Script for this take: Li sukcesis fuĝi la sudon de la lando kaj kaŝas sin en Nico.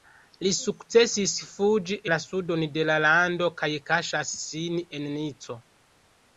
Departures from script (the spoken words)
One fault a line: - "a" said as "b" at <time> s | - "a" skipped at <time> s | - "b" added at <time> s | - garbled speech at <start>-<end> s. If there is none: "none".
none